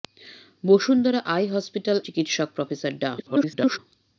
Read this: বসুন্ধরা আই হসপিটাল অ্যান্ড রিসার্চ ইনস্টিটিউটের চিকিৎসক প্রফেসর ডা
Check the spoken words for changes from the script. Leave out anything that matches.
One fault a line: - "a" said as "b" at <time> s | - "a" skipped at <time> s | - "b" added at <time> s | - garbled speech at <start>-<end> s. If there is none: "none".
- "অ্যান্ড রিসার্চ ইনস্টিটিউটের" skipped at 2.0 s
- garbled speech at 3.2-3.8 s